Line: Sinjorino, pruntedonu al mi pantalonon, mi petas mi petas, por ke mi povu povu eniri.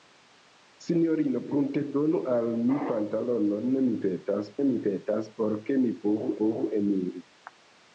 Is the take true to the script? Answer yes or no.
yes